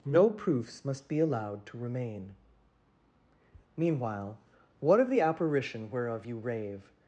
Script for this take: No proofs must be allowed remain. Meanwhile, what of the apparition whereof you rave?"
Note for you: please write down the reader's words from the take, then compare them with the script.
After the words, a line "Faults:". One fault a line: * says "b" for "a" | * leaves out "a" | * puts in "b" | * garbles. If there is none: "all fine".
No proofs must be allowed to remain. Meanwhile, what of the apparition whereof you rave?"
Faults:
* puts in "to"